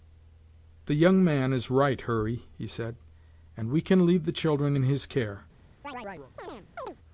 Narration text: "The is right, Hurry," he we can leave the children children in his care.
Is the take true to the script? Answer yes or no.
no